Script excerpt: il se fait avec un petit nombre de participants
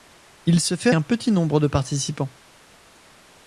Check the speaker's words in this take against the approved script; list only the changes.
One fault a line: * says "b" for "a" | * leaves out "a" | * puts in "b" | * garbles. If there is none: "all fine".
* leaves out "avec"